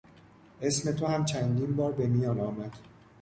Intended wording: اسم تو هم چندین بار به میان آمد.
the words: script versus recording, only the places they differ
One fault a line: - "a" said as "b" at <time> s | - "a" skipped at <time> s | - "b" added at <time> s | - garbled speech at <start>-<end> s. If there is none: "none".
none